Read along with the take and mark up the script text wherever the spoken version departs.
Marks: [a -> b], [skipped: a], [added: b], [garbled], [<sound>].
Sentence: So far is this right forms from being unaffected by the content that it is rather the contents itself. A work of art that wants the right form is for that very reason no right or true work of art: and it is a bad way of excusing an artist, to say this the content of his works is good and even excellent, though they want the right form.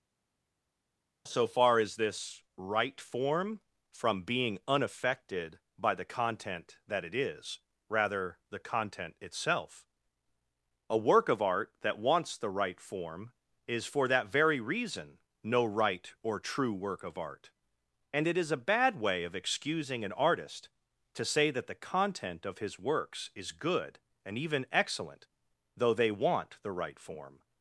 So far is this right [forms -> form] from being unaffected by the content that it is rather the [contents -> content] itself. A work of art that wants the right form is for that very reason no right or true work of art: and it is a bad way of excusing an artist, to say [this -> that] the content of his works is good and even excellent, though they want the right form.